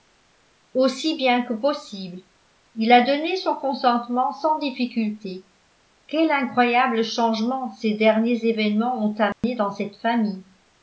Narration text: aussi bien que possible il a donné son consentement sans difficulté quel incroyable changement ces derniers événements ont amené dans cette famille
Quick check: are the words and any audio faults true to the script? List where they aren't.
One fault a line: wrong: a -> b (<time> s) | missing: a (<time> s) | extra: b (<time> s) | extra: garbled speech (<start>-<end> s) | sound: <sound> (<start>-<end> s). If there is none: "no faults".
sound: dropout (9.3-9.4 s)